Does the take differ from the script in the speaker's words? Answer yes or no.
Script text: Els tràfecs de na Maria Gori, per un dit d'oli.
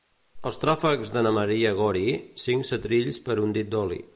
yes